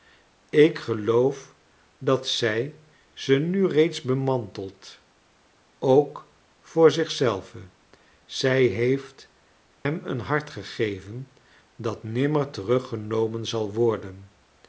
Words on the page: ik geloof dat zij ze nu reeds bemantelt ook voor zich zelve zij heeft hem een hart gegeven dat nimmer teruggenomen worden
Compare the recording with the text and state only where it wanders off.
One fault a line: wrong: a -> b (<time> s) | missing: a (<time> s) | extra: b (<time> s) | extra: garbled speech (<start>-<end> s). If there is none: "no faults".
extra: zal (13.5 s)